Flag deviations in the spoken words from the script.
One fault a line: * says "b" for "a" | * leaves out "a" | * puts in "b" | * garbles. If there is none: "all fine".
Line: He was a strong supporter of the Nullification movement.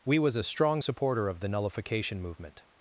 * says "We" for "He"